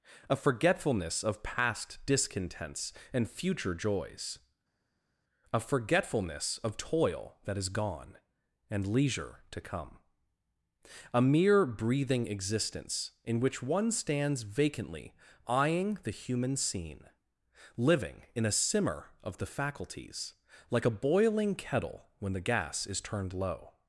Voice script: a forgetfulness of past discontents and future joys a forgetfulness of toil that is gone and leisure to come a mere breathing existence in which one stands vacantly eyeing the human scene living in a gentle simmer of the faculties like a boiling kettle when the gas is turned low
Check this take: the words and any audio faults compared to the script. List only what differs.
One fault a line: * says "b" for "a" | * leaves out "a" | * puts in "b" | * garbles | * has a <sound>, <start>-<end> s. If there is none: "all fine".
* leaves out "gentle"